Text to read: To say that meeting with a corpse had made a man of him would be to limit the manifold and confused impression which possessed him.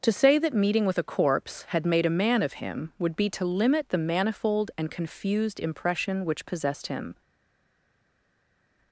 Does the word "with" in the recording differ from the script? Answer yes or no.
no